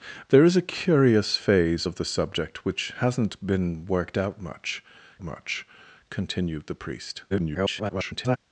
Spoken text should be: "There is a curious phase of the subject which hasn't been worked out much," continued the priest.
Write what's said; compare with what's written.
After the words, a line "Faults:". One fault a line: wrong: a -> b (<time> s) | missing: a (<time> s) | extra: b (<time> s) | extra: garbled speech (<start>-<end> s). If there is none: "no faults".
"There is a curious phase of the subject which hasn't been worked out much much," continued the priest. [garbled]
Faults:
extra: much (5.2 s)
extra: garbled speech (7.3-8.4 s)